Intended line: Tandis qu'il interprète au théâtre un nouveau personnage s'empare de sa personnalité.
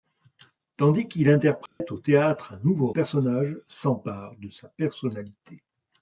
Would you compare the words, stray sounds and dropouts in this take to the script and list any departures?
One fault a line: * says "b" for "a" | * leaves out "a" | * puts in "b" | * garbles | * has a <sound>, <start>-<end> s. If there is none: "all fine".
* has a dropout, 1.7-1.8 s